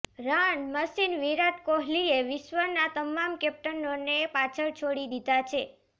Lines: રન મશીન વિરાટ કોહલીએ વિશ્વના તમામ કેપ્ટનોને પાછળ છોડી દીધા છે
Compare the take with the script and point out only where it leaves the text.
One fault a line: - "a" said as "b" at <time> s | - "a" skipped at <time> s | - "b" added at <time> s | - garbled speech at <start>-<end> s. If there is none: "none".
none